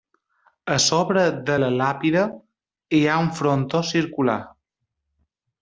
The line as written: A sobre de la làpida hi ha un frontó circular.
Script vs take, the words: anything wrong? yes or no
no